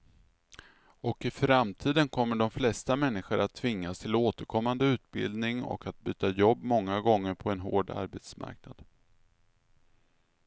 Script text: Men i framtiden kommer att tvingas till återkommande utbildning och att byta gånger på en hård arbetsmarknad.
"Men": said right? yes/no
no